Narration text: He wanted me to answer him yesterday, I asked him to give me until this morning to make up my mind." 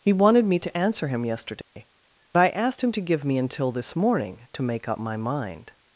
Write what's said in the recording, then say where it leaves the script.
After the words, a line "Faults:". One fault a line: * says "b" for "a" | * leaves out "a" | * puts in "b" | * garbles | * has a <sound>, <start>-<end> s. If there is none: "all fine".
He wanted me to answer him yesterday, I asked him to give me until this morning to make up my mind."
Faults:
* has a dropout, 1.6-1.8 s